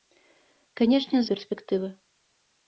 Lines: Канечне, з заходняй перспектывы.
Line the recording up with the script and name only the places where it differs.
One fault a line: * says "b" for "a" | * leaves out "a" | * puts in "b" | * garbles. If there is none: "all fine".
* leaves out "заходняй"